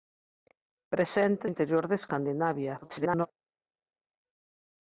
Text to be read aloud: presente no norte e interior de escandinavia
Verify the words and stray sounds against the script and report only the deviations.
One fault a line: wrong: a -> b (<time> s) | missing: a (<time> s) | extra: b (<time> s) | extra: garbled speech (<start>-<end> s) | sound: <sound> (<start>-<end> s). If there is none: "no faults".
missing: no norte (1.4 s)
extra: garbled speech (2.8-3.3 s)